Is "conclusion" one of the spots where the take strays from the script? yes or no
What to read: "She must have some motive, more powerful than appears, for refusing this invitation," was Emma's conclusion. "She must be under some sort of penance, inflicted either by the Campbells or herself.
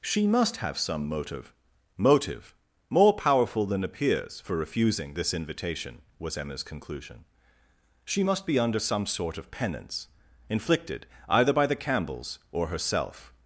no